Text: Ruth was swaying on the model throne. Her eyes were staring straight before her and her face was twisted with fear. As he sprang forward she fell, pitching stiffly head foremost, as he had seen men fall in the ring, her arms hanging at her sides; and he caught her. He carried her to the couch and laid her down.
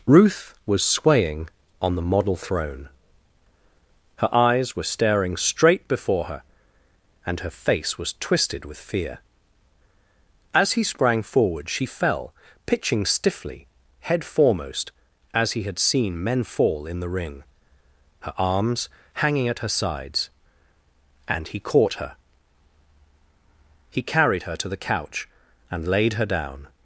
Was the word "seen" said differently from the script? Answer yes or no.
no